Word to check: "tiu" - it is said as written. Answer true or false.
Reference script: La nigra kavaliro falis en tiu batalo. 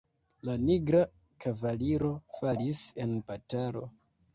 false